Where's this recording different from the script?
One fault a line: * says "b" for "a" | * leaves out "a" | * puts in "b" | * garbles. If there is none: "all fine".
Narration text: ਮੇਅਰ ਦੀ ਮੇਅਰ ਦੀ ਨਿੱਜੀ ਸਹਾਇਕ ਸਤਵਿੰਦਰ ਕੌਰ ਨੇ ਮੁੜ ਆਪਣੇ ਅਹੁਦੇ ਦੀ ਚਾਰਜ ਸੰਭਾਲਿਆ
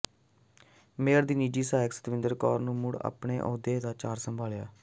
* leaves out "ਮੇਅਰ ਦੀ"
* says "ਦਾ" for "ਦੀ"